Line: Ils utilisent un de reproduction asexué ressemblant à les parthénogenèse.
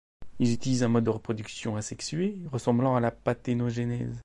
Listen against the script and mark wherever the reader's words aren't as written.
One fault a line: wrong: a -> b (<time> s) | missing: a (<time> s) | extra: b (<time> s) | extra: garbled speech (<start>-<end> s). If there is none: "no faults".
extra: mode (0.9 s)
wrong: les -> la (3.0 s)